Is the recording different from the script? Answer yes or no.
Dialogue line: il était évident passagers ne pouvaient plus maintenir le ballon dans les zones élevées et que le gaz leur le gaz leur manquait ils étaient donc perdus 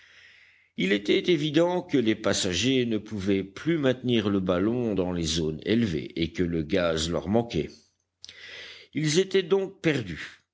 yes